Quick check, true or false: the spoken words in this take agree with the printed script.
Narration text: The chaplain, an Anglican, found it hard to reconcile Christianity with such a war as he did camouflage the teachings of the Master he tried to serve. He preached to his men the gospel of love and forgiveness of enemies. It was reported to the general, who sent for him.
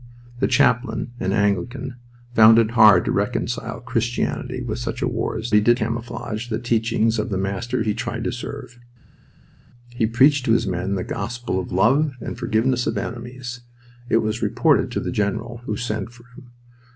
true